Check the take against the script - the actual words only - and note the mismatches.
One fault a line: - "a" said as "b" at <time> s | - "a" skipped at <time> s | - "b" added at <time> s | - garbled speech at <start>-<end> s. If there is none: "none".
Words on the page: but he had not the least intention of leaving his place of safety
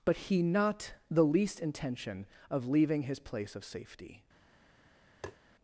- "had" skipped at 0.4 s